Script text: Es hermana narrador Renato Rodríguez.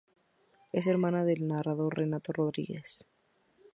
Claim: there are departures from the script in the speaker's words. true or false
true